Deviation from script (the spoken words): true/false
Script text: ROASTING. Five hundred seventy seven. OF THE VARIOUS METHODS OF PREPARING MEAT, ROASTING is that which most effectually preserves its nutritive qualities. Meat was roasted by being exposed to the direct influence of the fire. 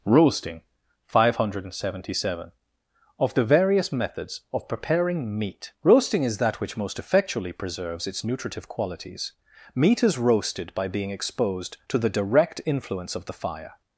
true